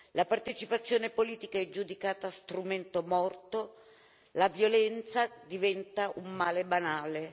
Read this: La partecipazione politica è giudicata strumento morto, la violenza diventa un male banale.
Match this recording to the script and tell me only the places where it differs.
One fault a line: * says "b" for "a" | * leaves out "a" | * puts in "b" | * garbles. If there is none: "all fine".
all fine